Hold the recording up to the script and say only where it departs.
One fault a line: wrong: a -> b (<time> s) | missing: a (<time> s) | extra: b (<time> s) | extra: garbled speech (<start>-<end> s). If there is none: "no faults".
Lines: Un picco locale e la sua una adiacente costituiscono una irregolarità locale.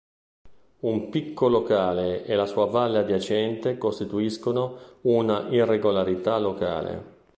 wrong: una -> valle (2.6 s)